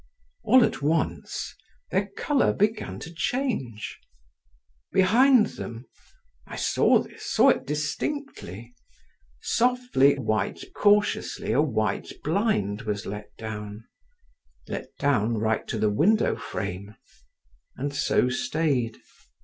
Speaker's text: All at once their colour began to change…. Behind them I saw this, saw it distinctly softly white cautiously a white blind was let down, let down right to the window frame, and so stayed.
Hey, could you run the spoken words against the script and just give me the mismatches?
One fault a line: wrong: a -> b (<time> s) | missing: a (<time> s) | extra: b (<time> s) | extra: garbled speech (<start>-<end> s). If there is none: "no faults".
no faults